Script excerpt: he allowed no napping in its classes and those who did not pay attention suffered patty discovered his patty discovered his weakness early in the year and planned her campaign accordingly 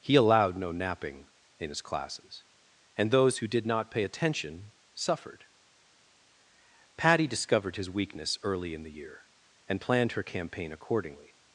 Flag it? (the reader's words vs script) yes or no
yes